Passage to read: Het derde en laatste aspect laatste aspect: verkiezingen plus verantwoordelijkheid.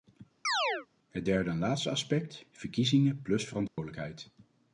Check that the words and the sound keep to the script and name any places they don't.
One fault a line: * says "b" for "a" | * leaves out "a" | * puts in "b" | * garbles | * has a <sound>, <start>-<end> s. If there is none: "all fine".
* has a chirp, 0.4-0.9 s
* leaves out "laatste aspect"
* has a dropout, 3.7-3.8 s